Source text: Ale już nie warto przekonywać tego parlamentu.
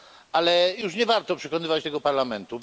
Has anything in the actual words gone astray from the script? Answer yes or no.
no